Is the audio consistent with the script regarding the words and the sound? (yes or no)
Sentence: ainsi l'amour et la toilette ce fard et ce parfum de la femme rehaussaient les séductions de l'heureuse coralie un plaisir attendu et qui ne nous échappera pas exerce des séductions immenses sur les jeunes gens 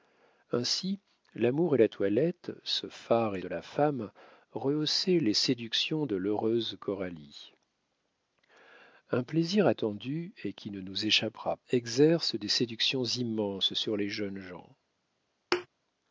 no